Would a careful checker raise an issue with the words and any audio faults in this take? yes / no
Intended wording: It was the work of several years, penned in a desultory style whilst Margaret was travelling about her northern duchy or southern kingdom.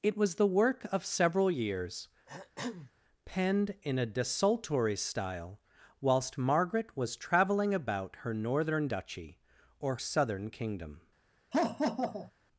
yes